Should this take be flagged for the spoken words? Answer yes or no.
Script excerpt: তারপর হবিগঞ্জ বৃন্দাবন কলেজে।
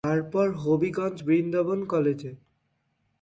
no